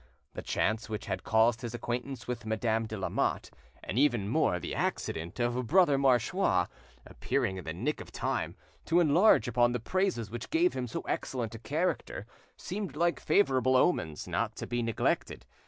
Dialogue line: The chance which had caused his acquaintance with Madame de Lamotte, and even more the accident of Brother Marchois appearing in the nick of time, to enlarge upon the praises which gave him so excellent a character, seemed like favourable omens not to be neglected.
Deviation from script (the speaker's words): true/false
false